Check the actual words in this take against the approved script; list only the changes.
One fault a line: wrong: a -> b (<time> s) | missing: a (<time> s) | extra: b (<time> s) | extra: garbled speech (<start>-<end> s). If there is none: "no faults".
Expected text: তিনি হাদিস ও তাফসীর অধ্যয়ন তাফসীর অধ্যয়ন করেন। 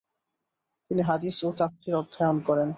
missing: তাফসীর অধ্যয়ন (2.4 s)